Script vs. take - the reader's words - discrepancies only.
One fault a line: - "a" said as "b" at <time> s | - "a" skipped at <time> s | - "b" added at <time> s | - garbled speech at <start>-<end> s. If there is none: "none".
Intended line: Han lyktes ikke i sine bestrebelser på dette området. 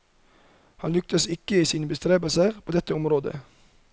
none